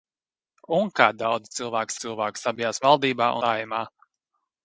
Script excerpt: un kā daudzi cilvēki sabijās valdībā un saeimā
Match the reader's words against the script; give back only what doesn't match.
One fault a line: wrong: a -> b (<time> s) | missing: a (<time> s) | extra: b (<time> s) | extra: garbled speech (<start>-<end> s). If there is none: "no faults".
extra: cilvēki (2.0 s)
missing: un (3.3 s)